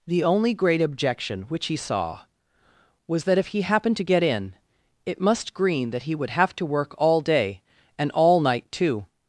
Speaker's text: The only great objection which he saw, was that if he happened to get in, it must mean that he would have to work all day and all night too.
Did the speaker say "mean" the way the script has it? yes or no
no